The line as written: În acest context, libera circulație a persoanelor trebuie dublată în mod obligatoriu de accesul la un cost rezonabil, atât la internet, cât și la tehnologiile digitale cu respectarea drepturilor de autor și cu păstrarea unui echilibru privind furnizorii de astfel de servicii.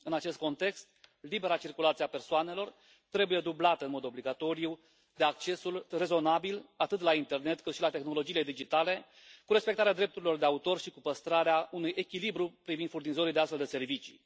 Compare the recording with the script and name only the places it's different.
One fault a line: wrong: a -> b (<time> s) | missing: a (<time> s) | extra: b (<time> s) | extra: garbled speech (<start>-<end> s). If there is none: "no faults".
missing: la un cost (5.8 s)